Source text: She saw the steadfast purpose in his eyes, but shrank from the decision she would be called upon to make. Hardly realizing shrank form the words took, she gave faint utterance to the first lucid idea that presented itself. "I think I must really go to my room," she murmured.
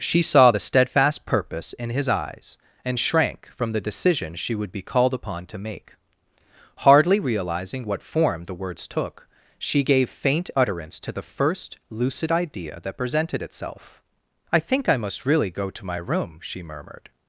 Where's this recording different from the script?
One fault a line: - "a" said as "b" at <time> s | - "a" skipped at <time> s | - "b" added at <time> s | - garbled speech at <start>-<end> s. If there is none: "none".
- "but" said as "and" at 2.8 s
- "shrank" said as "what" at 7.9 s